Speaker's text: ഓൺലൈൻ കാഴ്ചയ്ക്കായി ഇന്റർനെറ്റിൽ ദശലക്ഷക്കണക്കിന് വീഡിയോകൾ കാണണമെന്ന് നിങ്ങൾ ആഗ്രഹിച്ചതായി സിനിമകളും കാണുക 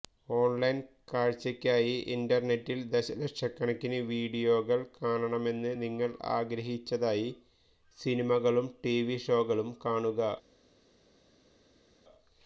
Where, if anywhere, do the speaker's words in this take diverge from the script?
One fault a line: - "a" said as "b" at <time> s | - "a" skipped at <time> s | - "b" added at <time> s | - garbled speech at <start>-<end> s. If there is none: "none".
- "ടിവി ഷോകളും" added at 8.8 s